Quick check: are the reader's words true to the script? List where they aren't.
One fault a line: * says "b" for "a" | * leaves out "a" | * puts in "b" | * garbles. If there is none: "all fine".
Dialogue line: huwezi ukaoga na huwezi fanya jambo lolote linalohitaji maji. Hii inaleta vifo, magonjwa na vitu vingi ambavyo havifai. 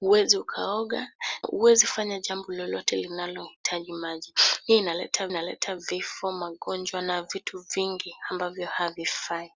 * leaves out "na"
* puts in "inaleta"